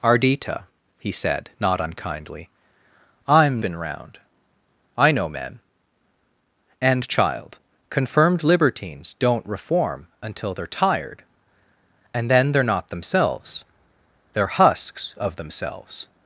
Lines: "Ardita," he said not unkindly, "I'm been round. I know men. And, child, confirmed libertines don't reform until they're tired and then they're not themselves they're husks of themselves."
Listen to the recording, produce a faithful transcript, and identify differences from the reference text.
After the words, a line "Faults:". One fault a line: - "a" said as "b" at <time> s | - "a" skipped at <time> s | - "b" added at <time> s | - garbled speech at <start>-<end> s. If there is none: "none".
"Ardita," he said not unkindly, "I'm been round. I know men. And, child, confirmed libertines don't reform until they're tired and then they're not themselves they're husks of themselves."
Faults:
none